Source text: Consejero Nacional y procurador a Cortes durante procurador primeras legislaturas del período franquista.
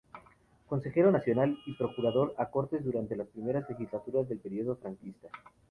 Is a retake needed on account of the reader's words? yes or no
yes